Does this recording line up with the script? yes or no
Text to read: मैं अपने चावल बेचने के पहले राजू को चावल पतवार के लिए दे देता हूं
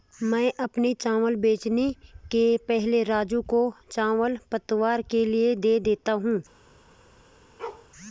yes